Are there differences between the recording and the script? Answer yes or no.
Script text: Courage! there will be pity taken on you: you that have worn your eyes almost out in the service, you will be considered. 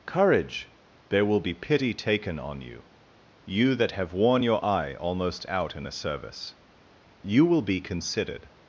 yes